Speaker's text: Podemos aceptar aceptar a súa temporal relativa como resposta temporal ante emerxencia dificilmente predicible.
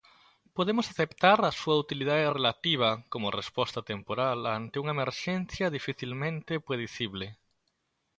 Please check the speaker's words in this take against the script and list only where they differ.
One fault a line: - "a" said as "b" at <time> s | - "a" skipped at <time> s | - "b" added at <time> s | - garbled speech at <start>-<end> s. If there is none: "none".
- "aceptar" skipped at 1.4 s
- "temporal" said as "utilidade" at 1.8 s
- "unha" added at 4.8 s